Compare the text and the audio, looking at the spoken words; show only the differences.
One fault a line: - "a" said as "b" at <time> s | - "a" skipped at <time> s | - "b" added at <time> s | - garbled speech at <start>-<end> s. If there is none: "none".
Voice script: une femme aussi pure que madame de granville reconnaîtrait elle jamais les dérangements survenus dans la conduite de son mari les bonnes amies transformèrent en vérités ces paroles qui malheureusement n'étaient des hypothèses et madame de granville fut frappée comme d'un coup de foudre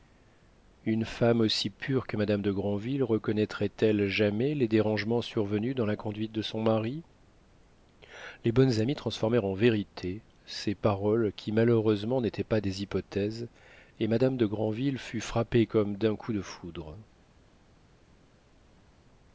- "pas" added at 12.4 s